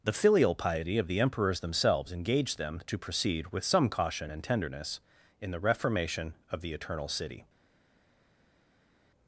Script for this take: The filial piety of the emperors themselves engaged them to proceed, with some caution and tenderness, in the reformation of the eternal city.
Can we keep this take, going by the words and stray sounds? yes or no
yes